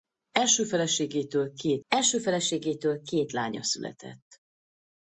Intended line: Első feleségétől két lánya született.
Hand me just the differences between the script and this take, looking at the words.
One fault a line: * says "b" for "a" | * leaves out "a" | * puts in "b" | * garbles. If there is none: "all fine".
* puts in "első feleségétől két"